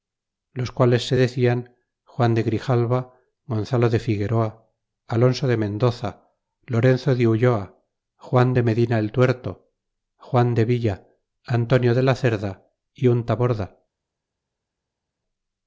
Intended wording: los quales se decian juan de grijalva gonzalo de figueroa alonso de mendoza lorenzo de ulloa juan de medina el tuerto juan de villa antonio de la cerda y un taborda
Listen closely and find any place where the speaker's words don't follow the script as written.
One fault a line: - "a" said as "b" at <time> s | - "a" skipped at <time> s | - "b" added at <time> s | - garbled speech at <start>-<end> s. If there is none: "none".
none